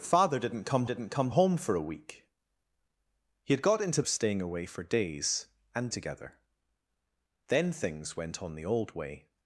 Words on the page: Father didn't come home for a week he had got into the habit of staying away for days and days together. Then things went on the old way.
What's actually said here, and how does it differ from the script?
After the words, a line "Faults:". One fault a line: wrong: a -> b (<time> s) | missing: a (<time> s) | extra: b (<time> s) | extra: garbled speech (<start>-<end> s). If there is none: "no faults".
Father didn't come didn't come home for a week he had got into of staying away for days and together. Then things went on the old way.
Faults:
extra: didn't come (0.8 s)
missing: the habit (4.0 s)
missing: days (5.9 s)